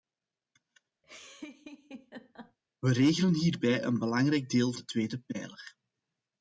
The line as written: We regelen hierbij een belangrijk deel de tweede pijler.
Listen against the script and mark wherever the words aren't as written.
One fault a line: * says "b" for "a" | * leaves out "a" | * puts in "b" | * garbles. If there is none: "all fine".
all fine